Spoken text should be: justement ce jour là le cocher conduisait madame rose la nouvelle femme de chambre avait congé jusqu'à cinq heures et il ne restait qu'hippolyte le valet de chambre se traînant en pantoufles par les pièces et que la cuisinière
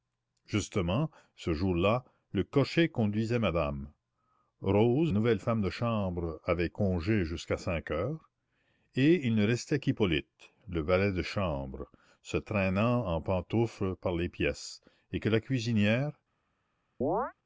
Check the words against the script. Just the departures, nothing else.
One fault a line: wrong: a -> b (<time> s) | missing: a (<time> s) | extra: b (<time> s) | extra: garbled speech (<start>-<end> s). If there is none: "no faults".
missing: la (5.1 s)